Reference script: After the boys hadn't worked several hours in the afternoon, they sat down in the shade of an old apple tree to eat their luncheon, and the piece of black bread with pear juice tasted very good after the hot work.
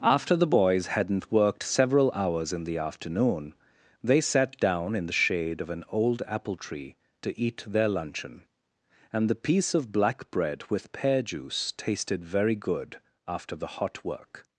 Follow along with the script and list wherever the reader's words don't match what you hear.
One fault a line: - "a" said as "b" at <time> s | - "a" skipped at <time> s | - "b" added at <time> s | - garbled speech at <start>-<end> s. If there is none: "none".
none